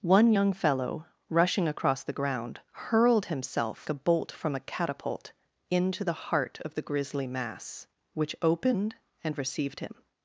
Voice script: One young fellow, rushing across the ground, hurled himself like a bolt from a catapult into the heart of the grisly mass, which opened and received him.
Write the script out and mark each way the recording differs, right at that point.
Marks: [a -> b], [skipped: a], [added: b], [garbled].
One young fellow, rushing across the ground, hurled himself [skipped: like] a bolt from a catapult into the heart of the grisly mass, which opened and received him.